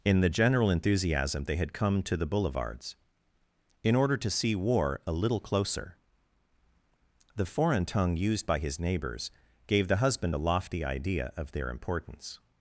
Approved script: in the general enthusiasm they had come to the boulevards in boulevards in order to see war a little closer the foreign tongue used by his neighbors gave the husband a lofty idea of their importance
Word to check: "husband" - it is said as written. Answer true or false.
true